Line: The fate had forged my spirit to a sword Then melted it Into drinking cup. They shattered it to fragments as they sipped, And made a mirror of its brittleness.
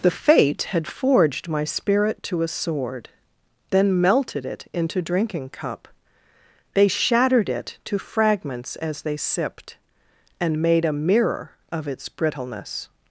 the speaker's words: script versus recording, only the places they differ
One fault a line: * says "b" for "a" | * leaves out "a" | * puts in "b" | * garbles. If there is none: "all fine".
all fine